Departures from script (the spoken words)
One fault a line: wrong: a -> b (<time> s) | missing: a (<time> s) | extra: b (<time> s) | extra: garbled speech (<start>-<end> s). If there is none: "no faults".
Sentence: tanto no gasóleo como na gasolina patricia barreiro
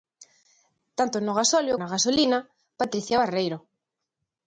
missing: como (1.8 s)